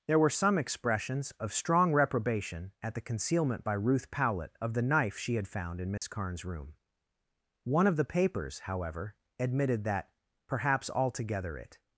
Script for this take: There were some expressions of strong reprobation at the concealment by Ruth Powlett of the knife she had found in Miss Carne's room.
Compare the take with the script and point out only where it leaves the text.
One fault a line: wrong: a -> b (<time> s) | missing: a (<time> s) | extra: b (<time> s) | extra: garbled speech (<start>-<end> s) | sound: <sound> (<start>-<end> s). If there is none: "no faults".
sound: dropout (6.0-6.0 s)
extra: One of the papers however admitted that Perhaps altogether it (7.6 s)